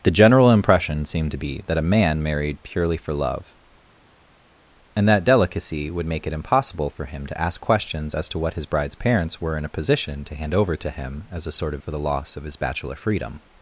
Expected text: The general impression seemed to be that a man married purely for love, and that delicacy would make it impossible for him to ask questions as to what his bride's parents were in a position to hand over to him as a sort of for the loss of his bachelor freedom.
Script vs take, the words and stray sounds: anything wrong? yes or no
no